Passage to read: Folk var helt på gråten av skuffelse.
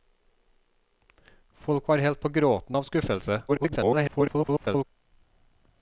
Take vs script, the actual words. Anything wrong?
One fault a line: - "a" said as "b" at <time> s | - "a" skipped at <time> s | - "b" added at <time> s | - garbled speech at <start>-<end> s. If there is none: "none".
- garbled speech at 3.5-4.8 s